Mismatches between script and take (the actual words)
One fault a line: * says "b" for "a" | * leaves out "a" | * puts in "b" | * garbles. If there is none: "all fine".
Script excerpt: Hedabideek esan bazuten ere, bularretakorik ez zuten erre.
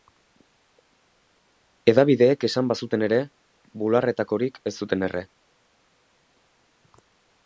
all fine